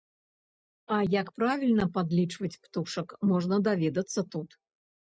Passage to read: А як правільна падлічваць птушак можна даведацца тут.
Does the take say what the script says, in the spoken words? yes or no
yes